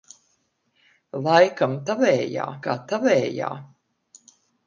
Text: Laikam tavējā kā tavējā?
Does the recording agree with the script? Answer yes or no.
yes